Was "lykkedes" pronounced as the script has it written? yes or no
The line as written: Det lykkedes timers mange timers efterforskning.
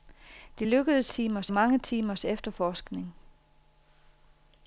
yes